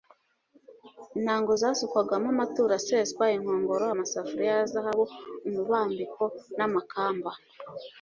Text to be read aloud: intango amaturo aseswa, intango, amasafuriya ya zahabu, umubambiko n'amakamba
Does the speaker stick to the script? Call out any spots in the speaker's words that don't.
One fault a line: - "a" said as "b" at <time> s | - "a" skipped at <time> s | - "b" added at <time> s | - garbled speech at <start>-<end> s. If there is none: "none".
- "zasukwagamo" added at 1.6 s
- "intango" said as "inkongoro" at 3.4 s